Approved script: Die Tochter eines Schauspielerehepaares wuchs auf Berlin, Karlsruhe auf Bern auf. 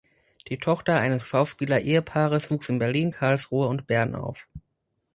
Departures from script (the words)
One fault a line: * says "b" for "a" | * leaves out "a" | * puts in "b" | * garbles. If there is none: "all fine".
* says "in" for "auf"
* says "und" for "auf"